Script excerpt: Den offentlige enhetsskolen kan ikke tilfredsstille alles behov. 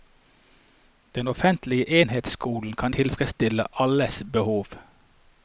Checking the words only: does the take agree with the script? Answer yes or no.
no